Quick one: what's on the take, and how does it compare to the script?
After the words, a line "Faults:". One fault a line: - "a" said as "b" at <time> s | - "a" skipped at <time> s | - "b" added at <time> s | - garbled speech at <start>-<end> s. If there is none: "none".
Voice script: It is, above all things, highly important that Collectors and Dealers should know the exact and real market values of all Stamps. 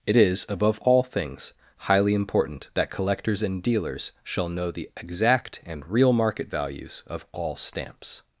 It is, above all things, highly important that Collectors and Dealers shall know the exact and real market values of all Stamps.
Faults:
- "should" said as "shall" at 4.2 s